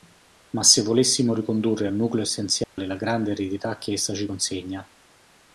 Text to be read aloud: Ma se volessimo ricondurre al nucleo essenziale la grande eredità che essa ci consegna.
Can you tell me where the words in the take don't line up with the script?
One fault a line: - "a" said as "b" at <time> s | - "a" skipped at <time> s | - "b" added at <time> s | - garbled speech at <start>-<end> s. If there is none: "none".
none